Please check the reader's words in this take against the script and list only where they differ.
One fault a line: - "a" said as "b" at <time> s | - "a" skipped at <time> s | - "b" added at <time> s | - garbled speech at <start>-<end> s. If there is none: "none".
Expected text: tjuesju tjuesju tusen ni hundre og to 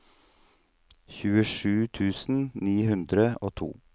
- "tjuesju" skipped at 1.9 s